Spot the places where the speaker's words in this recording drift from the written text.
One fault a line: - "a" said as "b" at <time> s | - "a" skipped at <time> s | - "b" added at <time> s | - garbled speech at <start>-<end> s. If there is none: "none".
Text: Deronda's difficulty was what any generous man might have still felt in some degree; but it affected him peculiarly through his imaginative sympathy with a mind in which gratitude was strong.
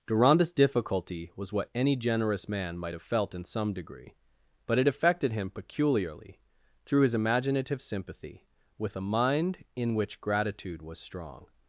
- "still" skipped at 3.0 s